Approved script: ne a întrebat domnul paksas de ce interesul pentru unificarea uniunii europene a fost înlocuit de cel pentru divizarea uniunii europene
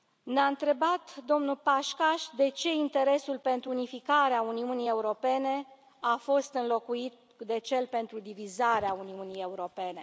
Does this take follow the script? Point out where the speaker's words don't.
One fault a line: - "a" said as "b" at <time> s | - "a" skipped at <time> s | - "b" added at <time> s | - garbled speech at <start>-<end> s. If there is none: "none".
none